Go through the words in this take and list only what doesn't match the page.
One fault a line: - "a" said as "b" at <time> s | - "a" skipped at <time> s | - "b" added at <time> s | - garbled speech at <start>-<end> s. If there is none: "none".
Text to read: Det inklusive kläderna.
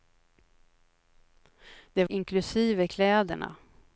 none